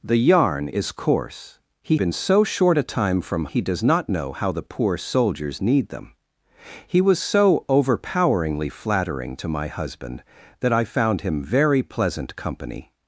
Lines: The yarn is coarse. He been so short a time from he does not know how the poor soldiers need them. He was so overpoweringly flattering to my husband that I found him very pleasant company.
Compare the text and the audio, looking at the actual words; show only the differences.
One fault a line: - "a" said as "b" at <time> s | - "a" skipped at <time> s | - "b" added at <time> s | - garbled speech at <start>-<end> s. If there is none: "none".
none